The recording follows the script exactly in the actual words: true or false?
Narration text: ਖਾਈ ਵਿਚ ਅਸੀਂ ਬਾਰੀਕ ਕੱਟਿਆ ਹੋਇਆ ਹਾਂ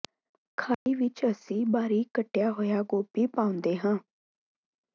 false